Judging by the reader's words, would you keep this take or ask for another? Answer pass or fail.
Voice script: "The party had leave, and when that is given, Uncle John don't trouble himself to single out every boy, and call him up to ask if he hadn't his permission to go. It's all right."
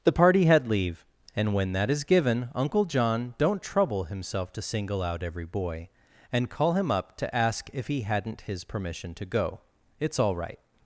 pass